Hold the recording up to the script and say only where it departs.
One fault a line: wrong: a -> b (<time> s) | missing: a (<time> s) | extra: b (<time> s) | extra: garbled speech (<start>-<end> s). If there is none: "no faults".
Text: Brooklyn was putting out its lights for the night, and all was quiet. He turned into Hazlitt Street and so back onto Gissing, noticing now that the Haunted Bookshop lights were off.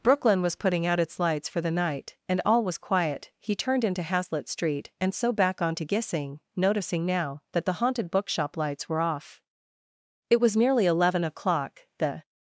extra: It was nearly eleven o'clock the (10.3 s)